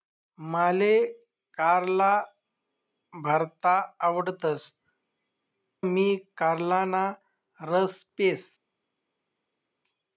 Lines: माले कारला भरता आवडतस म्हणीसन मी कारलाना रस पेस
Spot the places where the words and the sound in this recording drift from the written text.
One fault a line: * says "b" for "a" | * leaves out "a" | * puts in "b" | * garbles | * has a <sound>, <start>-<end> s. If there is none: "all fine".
* leaves out "म्हणीसन"